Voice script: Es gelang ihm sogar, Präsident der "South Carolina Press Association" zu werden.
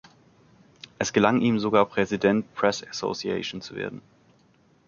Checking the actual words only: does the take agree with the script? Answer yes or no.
no